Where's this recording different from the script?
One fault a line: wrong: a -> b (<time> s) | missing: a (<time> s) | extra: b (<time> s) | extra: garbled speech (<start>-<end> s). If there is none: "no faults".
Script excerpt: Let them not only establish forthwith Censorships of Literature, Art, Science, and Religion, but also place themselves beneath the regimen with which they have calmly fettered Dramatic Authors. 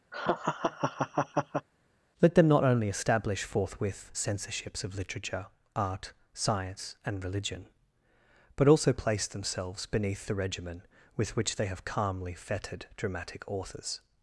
no faults